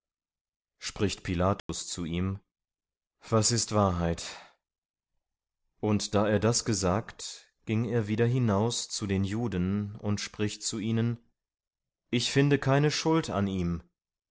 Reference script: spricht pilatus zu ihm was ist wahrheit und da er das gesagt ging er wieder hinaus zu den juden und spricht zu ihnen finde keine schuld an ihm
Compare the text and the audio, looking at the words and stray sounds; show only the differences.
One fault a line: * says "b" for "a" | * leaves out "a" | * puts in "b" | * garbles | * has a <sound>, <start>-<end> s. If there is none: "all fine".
* has a dropout, 1.6-1.7 s
* puts in "ich"